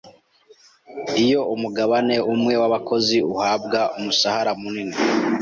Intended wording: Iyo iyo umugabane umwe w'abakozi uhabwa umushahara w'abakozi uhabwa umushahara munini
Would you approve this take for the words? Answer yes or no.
no